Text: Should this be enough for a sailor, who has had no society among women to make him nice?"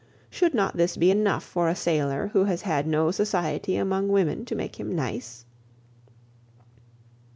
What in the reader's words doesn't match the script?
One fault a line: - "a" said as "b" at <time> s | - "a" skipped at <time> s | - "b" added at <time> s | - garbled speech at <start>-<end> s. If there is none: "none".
- "not" added at 0.6 s